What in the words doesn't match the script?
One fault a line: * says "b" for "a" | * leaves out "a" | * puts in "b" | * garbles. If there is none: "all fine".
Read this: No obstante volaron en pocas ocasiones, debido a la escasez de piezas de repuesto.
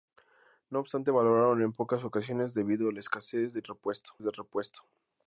* says "repuesto" for "piezas"